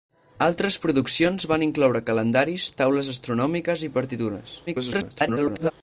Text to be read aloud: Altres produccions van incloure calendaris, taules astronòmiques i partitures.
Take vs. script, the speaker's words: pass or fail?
fail